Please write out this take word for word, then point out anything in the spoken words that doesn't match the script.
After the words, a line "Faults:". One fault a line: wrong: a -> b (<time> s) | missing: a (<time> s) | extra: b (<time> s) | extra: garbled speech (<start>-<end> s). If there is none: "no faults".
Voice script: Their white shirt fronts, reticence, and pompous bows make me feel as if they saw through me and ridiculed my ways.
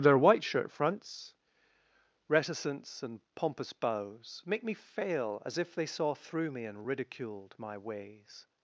Their white shirt fronts, reticence, and pompous bows make me fail as if they saw through me and ridiculed my ways.
Faults:
wrong: feel -> fail (4.7 s)